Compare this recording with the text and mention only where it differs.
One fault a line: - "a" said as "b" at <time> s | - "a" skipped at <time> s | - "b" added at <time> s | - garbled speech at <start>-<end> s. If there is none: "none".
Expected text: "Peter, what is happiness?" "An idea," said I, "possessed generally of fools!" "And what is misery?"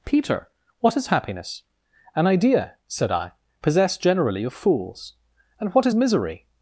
none